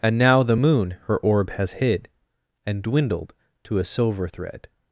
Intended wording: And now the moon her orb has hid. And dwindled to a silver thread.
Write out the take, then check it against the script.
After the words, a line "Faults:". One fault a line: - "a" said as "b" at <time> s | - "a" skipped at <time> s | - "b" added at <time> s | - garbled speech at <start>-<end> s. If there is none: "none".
And now the moon her orb has hid. And dwindled to a silver thread.
Faults:
none